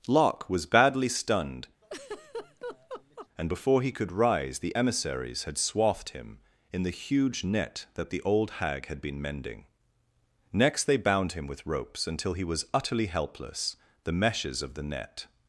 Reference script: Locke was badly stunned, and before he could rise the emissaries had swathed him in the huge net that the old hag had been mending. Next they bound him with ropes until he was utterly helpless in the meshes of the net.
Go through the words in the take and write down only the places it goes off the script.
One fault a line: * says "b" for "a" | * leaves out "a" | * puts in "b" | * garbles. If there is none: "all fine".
* leaves out "in"